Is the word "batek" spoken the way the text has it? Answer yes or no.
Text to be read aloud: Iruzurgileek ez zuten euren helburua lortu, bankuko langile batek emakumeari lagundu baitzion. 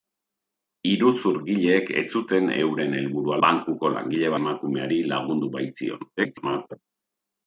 no